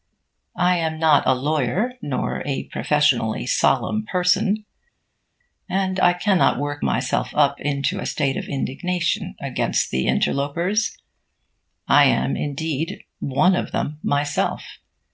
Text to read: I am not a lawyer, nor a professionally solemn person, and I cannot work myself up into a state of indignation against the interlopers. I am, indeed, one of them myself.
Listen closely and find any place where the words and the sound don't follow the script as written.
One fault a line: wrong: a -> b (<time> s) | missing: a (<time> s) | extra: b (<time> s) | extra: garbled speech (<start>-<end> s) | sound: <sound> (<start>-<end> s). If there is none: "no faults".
no faults